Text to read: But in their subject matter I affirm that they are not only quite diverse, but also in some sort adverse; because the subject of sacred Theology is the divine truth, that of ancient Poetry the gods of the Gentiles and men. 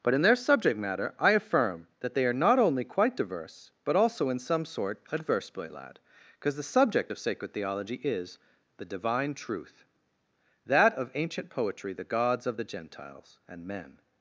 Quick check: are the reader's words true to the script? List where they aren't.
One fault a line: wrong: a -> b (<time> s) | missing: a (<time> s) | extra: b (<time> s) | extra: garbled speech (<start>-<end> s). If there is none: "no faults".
extra: boy lad (5.5 s)